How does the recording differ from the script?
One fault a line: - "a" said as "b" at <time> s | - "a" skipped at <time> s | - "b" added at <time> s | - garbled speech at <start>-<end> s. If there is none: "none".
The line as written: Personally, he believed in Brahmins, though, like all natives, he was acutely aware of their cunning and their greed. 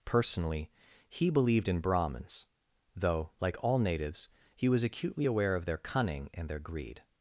none